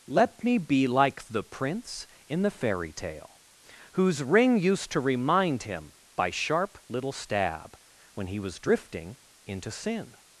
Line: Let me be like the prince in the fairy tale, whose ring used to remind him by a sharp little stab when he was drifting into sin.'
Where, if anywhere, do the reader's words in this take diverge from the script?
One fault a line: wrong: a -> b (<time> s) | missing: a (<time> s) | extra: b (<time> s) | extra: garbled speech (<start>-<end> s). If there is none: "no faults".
missing: a (6.3 s)